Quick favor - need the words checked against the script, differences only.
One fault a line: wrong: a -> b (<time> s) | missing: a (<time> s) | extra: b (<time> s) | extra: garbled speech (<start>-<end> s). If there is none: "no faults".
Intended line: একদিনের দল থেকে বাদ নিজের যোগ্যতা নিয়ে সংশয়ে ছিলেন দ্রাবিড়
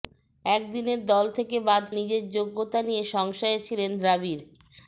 no faults